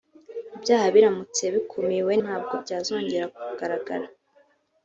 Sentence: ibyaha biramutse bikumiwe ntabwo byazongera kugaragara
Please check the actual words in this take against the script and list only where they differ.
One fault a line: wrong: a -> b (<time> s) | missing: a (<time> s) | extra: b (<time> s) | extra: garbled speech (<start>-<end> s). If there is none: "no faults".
no faults